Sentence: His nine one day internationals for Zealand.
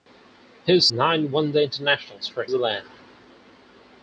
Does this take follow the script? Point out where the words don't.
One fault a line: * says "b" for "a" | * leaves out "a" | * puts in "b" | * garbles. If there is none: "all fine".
all fine